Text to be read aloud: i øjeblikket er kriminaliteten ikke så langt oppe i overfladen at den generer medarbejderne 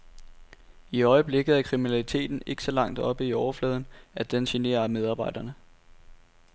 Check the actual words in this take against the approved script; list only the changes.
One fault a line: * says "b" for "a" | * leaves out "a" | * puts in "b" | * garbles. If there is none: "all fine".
all fine